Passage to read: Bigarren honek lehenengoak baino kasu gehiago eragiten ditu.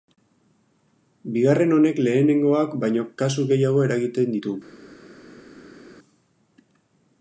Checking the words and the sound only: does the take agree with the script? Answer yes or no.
yes